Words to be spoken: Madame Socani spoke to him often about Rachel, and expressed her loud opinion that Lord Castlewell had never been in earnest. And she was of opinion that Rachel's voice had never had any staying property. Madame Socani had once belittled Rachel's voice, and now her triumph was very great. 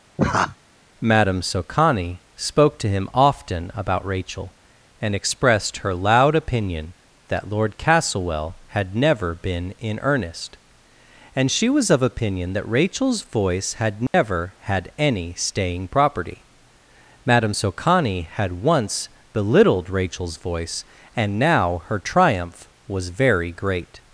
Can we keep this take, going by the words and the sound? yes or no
no